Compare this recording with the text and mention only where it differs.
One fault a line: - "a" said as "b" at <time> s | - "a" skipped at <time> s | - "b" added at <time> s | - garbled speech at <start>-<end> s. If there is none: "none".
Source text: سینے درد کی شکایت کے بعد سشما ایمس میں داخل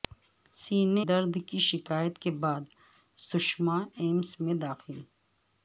none